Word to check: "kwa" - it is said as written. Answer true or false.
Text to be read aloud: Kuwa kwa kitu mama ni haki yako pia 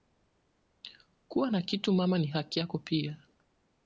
false